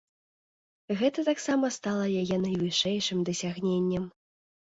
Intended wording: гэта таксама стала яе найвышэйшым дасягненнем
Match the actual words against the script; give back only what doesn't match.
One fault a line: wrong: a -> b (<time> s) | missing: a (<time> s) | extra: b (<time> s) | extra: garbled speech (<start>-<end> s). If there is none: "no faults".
no faults